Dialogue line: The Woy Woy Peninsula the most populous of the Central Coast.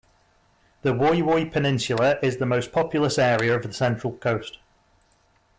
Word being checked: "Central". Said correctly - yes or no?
yes